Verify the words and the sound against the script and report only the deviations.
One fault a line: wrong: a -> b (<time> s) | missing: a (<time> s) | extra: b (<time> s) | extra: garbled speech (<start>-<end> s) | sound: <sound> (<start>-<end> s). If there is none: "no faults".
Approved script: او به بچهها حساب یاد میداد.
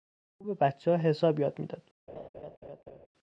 sound: laugh (2.1-3.1 s)